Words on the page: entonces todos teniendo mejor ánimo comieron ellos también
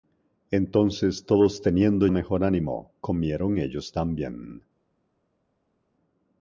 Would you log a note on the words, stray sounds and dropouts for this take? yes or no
no